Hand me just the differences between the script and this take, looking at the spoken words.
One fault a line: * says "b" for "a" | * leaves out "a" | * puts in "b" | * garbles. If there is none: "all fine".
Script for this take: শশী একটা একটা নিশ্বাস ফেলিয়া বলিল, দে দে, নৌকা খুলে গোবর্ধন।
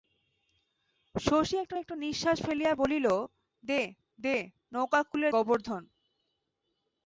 all fine